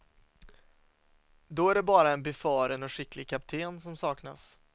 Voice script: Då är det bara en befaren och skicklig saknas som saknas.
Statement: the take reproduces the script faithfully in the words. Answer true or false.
false